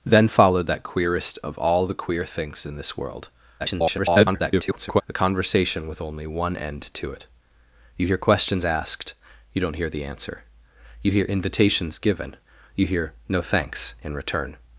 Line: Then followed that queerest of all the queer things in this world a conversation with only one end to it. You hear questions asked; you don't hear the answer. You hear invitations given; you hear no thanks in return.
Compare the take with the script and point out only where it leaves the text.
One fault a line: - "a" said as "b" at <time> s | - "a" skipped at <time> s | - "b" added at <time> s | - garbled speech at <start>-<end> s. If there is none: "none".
- garbled speech at 3.6-5.0 s